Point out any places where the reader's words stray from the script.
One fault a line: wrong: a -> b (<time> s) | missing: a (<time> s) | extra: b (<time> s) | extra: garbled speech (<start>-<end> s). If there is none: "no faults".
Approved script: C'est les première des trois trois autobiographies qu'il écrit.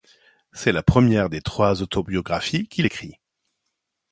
wrong: les -> la (0.7 s)
missing: trois (1.8 s)